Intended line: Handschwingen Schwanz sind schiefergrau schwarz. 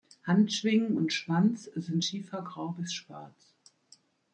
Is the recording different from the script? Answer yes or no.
yes